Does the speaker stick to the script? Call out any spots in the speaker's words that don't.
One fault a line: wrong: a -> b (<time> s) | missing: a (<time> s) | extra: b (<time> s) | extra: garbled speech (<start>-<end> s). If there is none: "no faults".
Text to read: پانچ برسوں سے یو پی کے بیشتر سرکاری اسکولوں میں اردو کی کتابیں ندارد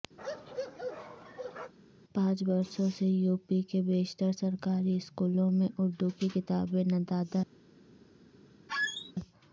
no faults